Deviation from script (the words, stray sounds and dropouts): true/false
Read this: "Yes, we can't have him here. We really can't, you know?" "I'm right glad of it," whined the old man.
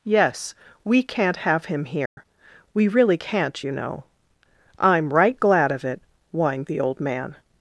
true